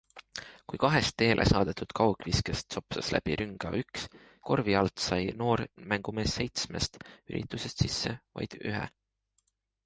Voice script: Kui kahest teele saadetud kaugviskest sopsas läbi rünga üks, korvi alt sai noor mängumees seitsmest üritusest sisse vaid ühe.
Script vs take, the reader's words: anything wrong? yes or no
no